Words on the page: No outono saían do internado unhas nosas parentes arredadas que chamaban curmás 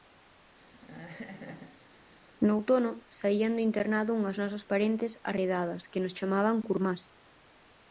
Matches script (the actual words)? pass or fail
fail